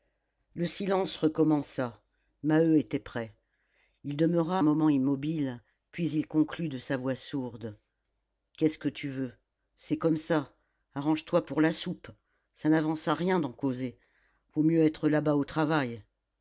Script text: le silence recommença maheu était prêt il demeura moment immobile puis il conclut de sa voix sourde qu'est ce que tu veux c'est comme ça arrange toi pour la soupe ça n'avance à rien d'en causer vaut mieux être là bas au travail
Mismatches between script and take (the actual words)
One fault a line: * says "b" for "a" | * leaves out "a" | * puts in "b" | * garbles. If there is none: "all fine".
all fine